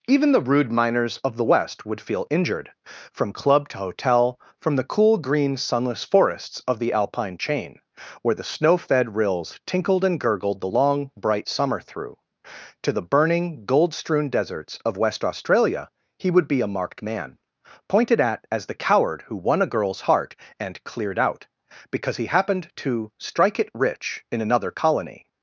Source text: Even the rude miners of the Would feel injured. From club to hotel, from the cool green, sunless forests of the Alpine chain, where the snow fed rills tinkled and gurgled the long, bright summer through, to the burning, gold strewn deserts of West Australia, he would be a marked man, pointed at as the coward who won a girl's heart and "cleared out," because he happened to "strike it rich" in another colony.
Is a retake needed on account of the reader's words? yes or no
yes